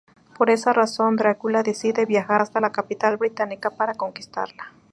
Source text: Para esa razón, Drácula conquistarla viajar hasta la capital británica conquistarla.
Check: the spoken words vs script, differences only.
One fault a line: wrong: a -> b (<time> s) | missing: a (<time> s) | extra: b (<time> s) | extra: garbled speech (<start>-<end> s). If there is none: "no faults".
wrong: Para -> Por (0.3 s)
wrong: conquistarla -> decide (1.6 s)
extra: para (3.7 s)